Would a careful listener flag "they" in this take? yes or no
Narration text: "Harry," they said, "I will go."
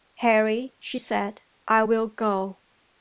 yes